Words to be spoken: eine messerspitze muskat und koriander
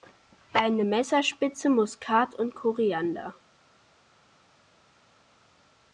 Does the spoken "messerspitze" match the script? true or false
true